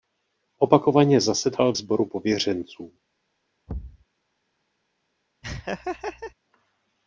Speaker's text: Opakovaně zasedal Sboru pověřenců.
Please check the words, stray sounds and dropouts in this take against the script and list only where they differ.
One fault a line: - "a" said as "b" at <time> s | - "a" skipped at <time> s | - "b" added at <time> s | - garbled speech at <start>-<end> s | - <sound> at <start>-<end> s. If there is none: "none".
- thud at 3.7-4.1 s
- laugh at 5.4-6.3 s